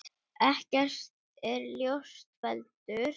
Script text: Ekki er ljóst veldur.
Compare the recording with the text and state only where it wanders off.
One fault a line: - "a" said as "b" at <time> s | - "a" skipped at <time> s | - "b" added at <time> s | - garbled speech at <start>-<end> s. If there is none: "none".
none